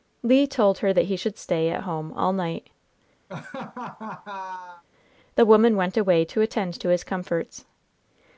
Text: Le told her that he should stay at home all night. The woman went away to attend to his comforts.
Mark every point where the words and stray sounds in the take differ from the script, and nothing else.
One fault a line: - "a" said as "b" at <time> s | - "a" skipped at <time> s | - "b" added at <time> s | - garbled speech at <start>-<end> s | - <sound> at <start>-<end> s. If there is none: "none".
- laugh at 3.3-4.8 s